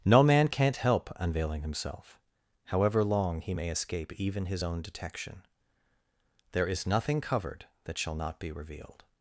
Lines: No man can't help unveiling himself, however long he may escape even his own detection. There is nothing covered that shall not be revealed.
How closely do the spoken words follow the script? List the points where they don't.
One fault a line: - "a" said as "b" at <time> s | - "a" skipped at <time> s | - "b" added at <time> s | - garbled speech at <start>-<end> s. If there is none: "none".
none